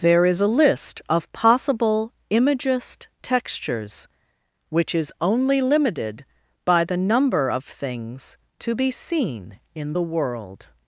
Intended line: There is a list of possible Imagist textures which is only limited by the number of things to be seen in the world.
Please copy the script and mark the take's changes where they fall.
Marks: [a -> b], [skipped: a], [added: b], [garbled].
There is a list of possible Imagist textures which is only limited by the number of things to be seen in the world.